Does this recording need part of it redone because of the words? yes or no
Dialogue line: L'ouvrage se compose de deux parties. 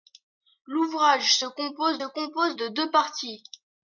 yes